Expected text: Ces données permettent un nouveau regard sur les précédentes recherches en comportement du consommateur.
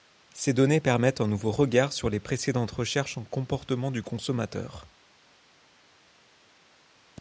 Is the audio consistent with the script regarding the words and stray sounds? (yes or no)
yes